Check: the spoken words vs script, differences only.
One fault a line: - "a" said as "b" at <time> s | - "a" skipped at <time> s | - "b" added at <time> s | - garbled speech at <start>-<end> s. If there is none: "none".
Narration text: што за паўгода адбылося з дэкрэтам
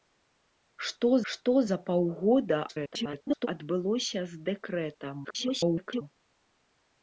- "што" added at 1.3 s
- garbled speech at 2.7-3.5 s
- garbled speech at 5.2-6.0 s